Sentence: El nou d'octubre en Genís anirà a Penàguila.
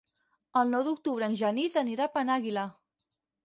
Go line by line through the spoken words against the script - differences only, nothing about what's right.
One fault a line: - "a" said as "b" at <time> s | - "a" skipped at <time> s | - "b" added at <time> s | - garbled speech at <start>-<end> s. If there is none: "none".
none